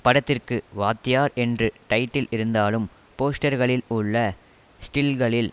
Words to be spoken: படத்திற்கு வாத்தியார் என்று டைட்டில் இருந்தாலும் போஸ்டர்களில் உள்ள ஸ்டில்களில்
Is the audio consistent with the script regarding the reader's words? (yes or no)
yes